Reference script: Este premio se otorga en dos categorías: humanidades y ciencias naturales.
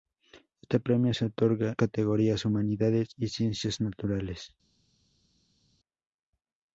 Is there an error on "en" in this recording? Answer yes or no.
yes